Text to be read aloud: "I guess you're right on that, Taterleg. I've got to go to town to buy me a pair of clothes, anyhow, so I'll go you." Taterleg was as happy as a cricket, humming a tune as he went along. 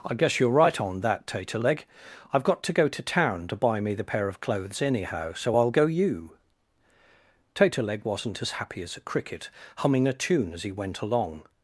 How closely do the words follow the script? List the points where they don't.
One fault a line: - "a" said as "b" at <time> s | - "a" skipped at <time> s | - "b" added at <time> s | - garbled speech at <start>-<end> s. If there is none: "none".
- "a" said as "the" at 3.9 s
- "was" said as "wasn't" at 8.0 s